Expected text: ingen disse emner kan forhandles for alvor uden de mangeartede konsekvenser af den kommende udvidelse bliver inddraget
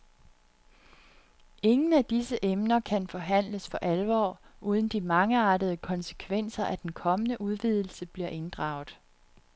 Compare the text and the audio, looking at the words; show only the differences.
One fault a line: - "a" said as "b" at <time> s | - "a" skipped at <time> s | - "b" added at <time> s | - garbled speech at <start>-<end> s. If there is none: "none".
- "af" added at 1.9 s